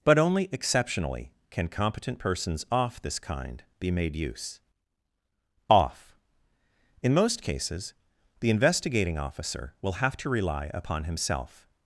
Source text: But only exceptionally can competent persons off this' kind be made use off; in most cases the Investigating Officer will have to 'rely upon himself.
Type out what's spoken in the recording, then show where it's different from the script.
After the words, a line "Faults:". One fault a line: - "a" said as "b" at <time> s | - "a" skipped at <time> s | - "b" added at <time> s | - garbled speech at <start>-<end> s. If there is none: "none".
But only exceptionally can competent persons off this' kind be made use off; in most cases the Investigating Officer will have to 'rely upon himself.
Faults:
none